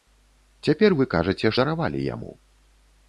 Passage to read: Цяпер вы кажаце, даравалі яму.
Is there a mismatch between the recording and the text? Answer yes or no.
no